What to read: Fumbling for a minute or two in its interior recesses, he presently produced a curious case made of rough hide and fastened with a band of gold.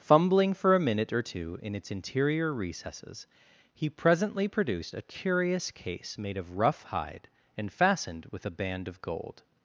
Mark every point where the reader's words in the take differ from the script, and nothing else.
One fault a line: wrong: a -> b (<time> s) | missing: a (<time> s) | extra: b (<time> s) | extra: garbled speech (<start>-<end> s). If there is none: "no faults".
no faults